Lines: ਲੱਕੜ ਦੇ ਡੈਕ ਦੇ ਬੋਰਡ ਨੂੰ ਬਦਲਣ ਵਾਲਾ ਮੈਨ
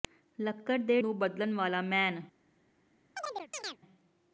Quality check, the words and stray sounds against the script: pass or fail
fail